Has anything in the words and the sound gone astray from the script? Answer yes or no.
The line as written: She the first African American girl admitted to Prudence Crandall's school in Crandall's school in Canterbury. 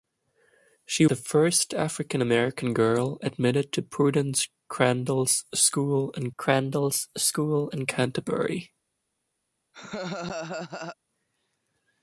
yes